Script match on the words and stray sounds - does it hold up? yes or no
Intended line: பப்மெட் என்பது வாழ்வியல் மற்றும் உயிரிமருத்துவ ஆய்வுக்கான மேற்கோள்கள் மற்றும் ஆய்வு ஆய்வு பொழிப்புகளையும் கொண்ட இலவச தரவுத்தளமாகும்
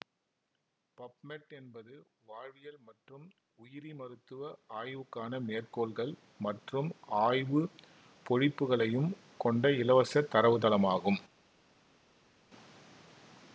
no